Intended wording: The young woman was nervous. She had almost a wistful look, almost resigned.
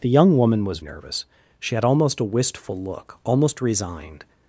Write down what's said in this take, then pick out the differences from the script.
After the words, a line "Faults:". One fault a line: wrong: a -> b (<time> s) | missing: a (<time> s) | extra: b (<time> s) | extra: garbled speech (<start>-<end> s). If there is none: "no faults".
The young woman was nervous. She had almost a wistful look, almost resigned.
Faults:
no faults